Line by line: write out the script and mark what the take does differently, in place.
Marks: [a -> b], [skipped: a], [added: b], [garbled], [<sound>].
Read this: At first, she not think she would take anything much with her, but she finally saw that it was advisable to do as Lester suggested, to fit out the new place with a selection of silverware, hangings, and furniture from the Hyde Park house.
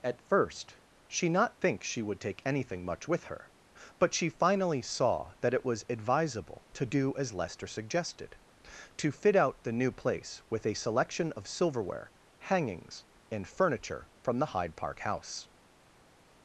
At first, she not think she would take anything much with her, but she finally saw that it was advisable to do as Lester suggested, to fit out the new place with a selection of silverware, hangings, and furniture from the Hyde Park house.